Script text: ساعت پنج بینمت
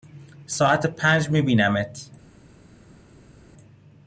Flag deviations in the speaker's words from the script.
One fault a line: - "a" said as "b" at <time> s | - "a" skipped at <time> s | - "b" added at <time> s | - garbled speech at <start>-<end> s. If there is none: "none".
- "می" added at 1.3 s